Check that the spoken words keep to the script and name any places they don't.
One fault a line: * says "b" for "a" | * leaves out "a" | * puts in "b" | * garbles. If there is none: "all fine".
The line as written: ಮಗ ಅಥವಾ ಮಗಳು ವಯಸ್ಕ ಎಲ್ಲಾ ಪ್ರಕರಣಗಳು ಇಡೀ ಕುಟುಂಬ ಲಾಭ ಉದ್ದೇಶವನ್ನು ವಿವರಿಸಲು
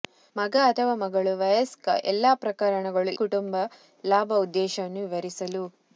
* leaves out "ಇಡೀ"